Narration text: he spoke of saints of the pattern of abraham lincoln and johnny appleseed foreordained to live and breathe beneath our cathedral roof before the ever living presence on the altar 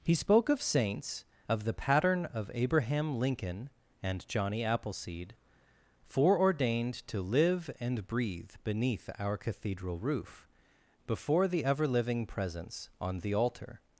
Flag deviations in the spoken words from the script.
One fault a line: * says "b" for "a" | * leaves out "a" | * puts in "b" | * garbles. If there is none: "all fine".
all fine